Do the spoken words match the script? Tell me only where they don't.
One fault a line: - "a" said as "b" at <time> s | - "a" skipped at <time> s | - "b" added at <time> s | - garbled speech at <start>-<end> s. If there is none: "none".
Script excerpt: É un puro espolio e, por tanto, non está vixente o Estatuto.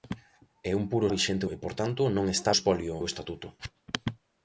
- "espolio" said as "vixente" at 1.1 s
- "vixente" said as "espolio" at 2.6 s